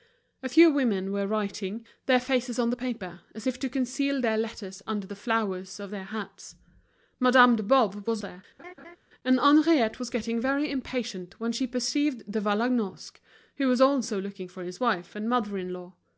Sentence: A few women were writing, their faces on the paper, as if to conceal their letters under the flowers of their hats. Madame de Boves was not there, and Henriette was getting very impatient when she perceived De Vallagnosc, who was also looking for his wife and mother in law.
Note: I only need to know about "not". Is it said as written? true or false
false